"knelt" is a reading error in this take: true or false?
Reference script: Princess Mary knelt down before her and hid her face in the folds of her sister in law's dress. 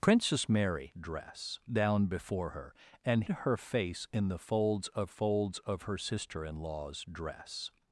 true